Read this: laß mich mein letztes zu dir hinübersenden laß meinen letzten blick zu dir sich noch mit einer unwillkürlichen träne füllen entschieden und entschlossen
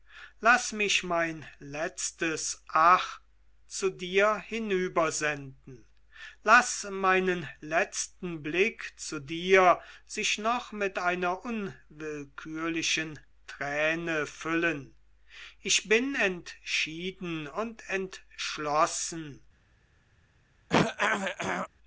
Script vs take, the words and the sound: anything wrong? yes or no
yes